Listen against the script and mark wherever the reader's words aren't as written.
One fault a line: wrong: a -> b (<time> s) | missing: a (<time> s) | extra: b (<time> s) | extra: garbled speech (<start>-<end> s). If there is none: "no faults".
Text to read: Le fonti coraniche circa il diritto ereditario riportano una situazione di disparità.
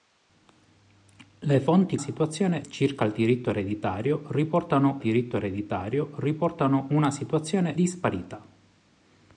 wrong: coraniche -> situazione (2.0 s)
extra: diritto ereditario riportano (5.0 s)
missing: di (7.8 s)